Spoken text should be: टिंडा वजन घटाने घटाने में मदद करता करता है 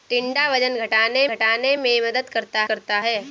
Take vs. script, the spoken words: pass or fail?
pass